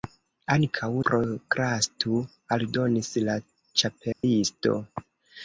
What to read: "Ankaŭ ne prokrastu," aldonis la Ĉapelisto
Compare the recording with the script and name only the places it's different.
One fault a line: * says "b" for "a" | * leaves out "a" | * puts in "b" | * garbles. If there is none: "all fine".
* leaves out "ne"